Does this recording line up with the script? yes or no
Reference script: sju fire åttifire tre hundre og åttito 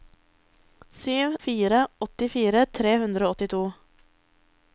yes